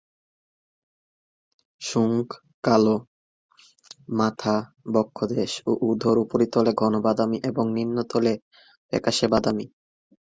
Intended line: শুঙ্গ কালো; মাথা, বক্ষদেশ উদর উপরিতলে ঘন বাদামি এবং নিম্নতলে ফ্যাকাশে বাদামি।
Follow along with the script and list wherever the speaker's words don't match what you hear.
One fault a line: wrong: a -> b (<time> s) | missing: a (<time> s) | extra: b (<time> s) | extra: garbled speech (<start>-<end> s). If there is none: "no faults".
extra: ও (5.7 s)